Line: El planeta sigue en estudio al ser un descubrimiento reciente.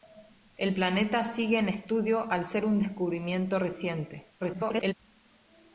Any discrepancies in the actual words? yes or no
yes